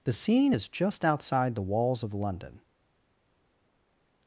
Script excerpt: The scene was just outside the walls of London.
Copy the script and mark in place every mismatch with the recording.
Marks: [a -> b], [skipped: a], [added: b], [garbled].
The scene [was -> is] just outside the walls of London.